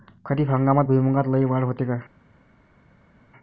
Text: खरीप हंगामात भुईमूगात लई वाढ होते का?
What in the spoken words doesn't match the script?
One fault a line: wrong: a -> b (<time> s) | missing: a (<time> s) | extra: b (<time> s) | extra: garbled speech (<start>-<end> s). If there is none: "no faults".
no faults